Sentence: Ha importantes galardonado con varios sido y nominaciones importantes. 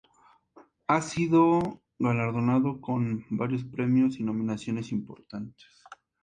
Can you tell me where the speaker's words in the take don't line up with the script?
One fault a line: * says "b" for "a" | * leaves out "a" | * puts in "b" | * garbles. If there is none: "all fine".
* says "sido" for "importantes"
* says "premios" for "sido"